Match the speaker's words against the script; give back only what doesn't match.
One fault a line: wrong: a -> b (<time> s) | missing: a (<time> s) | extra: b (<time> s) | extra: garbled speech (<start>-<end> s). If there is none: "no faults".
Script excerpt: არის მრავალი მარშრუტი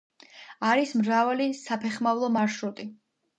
extra: საფეხმავლო (1.6 s)